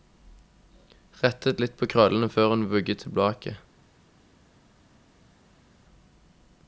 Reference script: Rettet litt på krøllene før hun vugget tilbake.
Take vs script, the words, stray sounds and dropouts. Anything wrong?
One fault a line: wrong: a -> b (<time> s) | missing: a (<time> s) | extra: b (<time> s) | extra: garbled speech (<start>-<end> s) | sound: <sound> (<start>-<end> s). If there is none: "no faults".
no faults